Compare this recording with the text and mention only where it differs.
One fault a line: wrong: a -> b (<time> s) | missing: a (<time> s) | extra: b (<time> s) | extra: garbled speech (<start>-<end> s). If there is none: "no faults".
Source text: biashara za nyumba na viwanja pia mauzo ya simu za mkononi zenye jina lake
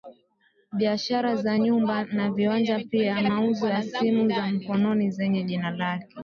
no faults